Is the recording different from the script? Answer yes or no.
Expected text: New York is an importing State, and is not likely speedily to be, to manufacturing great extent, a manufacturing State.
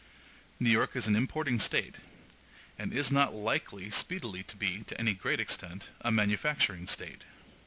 yes